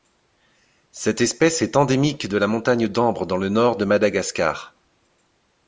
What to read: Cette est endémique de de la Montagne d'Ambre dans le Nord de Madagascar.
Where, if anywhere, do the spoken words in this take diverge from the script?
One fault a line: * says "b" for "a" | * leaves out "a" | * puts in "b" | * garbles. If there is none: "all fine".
* puts in "espèce"
* leaves out "de"